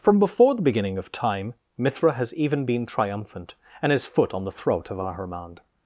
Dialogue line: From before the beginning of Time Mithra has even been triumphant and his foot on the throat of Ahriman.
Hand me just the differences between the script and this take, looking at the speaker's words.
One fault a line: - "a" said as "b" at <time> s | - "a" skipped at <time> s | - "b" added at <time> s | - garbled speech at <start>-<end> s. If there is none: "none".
none